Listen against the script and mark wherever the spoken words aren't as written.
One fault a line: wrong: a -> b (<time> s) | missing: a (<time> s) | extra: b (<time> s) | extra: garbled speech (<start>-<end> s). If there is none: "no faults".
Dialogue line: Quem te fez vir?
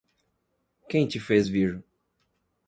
no faults